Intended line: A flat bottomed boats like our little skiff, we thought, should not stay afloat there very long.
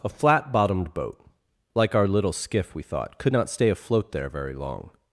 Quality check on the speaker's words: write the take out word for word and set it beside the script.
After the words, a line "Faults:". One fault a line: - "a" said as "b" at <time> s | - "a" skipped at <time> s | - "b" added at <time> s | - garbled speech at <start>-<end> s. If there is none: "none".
A flat bottomed boat like our little skiff, we thought, could not stay afloat there very long.
Faults:
- "boats" said as "boat" at 0.9 s
- "should" said as "could" at 3.2 s